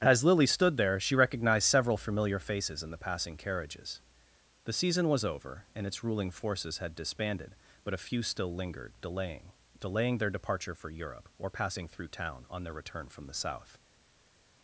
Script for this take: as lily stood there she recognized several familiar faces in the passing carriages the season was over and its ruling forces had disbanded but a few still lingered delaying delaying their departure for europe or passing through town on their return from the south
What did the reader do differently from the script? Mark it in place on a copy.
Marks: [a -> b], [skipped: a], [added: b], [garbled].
as lily stood there she recognized several familiar faces in the passing carriages the season was over and its ruling forces had disbanded but a few still lingered delaying delaying their departure for europe or passing through town on their return from the south